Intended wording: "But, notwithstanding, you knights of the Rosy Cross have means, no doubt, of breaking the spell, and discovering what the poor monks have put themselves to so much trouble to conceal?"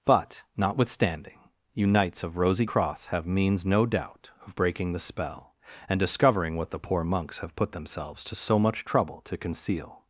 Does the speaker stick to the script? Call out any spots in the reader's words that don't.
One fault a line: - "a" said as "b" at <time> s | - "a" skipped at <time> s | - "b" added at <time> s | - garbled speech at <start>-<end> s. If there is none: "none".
- "the" skipped at 2.4 s